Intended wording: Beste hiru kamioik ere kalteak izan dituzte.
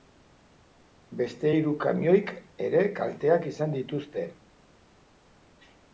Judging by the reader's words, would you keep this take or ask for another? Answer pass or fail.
pass